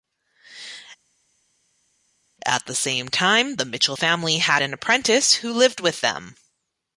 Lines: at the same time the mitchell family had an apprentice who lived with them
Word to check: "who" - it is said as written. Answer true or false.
true